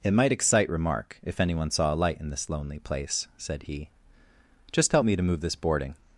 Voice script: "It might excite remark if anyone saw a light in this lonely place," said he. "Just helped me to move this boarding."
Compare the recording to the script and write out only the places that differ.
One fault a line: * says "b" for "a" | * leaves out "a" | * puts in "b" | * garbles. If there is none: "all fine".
* says "help" for "helped"